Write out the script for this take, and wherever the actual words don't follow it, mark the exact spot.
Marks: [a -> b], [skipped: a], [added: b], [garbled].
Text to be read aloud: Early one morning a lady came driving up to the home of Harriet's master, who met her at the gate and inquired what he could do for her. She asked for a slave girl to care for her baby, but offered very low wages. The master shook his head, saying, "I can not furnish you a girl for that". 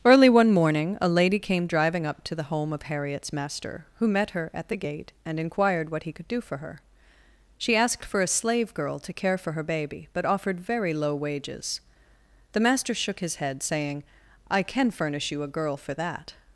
Early one morning a lady came driving up to the home of Harriet's master, who met her at the gate and inquired what he could do for her. She asked for a slave girl to care for her baby, but offered very low wages. The master shook his head, saying, "I can [skipped: not] furnish you a girl for that".